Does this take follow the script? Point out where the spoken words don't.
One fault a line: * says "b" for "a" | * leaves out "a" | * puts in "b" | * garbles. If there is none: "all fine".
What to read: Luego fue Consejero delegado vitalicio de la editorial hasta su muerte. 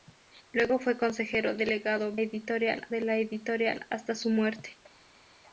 * says "editorial" for "vitalicio"